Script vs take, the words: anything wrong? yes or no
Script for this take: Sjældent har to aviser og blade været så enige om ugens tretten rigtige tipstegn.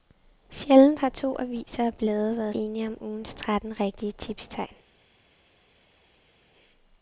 yes